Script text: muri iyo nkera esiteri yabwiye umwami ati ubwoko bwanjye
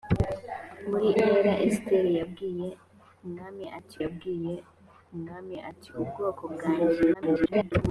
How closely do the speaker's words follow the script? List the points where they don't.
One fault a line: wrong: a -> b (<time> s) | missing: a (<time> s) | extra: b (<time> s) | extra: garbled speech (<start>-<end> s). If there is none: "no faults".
missing: iyo (1.1 s)
extra: yabwiye umwami ati (4.0 s)
extra: garbled speech (7.1-7.7 s)